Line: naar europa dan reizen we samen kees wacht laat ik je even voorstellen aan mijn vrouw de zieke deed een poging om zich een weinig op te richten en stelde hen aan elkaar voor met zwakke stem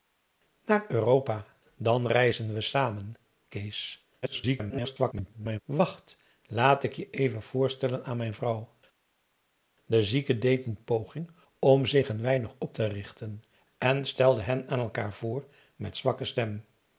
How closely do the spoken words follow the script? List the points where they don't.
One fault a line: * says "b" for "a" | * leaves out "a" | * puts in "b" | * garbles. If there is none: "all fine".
* garbles